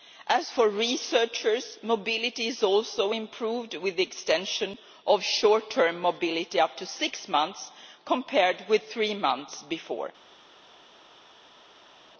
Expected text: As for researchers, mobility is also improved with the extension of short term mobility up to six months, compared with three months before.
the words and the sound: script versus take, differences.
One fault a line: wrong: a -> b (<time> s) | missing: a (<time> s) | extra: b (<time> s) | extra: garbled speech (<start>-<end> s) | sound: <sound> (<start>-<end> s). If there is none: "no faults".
no faults